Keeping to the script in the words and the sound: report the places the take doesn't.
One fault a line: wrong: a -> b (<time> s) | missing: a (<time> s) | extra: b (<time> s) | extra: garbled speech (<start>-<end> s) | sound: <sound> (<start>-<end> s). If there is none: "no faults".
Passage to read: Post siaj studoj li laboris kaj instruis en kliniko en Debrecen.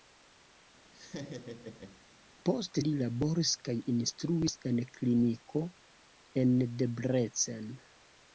sound: laugh (0.9-2.0 s)
missing: siaj studoj (2.8 s)